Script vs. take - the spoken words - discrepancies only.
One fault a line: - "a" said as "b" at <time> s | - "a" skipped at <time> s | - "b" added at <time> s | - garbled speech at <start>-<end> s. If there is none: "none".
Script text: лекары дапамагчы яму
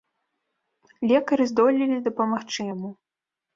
- "здолелі" added at 1.5 s